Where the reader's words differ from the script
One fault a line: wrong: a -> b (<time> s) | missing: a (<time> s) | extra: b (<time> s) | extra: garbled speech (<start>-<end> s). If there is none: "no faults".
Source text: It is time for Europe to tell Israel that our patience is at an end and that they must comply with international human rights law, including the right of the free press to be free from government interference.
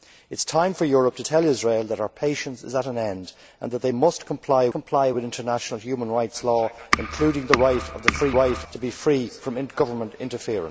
extra: comply (4.7 s)
wrong: press -> right (8.3 s)